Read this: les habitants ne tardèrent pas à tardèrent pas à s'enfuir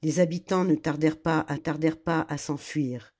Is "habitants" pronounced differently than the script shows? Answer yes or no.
no